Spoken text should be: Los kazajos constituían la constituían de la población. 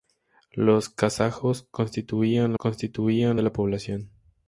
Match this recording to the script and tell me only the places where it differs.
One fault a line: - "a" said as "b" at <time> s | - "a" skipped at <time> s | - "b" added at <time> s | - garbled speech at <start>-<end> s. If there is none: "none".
none